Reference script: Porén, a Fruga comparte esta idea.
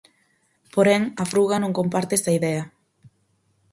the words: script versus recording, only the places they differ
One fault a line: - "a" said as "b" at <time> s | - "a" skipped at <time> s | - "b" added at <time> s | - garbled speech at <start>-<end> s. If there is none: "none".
- "non" added at 1.6 s